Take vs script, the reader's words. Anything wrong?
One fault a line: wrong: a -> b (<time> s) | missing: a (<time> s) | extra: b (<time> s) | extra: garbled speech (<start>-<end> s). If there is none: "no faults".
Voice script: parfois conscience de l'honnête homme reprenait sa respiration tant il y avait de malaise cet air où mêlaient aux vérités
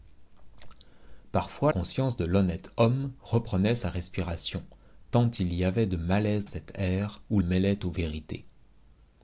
no faults